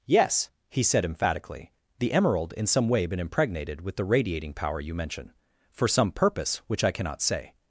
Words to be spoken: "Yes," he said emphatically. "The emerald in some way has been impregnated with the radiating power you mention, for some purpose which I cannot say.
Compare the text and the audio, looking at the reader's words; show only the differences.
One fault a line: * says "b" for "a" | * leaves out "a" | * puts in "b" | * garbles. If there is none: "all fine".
* leaves out "has"